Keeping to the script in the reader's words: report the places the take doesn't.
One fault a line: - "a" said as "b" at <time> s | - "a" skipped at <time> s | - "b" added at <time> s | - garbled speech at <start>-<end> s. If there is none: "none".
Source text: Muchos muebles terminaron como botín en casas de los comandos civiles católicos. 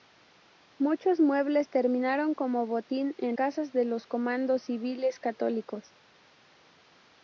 none